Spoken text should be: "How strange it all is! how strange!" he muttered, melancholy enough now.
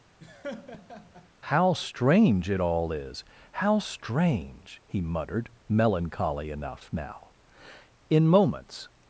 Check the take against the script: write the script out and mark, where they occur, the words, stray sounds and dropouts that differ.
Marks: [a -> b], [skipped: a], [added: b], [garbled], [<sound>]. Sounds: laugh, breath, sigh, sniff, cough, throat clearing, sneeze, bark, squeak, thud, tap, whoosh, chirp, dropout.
[laugh] "How strange it all is! how strange!" he muttered, melancholy enough now. [added: In moments]